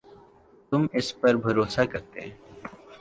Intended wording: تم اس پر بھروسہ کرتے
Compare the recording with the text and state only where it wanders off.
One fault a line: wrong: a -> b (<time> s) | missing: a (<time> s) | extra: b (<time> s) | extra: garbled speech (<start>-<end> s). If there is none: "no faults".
no faults